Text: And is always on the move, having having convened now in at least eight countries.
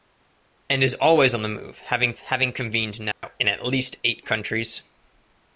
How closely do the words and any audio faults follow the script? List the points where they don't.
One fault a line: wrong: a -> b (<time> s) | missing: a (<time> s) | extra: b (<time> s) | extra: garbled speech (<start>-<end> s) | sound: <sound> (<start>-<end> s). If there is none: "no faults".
sound: dropout (3.1-3.2 s)